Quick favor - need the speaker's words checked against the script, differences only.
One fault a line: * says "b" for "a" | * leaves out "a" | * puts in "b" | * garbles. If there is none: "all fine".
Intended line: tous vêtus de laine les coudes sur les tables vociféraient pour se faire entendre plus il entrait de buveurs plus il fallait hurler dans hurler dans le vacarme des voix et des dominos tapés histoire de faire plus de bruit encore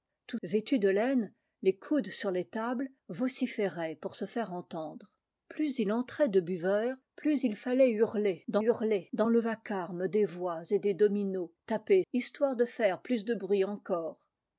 all fine